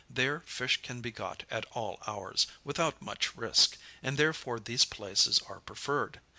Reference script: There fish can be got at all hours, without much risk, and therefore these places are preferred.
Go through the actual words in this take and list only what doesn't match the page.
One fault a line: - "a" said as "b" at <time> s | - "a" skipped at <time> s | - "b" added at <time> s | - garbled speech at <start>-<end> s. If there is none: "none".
none